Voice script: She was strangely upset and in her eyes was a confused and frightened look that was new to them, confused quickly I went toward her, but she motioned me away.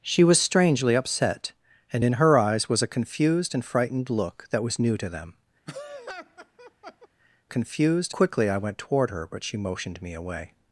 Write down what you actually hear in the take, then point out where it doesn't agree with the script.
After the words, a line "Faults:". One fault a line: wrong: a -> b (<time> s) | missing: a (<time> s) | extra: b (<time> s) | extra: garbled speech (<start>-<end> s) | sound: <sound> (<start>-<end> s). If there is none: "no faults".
She was strangely upset and in her eyes was a confused and frightened look that was new to them, confused quickly I went toward her, but she motioned me away.
Faults:
sound: laugh (5.7-7.1 s)